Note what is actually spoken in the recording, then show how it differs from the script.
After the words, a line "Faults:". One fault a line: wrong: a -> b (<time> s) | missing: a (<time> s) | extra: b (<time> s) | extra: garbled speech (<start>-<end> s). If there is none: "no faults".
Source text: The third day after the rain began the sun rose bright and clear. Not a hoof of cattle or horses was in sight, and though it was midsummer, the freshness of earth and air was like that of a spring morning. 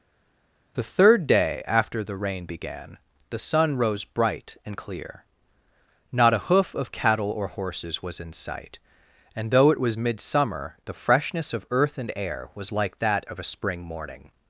The third day after the rain began the sun rose bright and clear. Not a hoof of cattle or horses was in sight, and though it was midsummer, the freshness of earth and air was like that of a spring morning.
Faults:
no faults